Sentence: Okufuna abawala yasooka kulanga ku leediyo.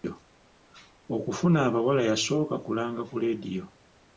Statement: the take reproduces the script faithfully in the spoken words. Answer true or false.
true